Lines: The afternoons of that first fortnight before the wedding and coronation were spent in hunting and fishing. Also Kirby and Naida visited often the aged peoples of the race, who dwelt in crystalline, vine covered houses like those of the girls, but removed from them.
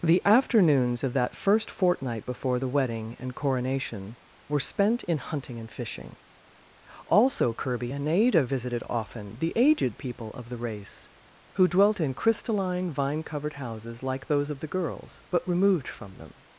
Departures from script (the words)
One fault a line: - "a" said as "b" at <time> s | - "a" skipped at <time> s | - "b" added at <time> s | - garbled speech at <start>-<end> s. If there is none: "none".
- "peoples" said as "people" at 10.0 s